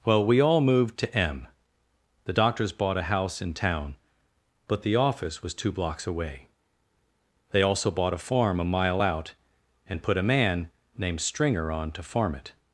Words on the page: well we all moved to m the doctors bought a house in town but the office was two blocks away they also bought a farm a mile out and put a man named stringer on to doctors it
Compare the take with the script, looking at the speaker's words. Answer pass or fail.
fail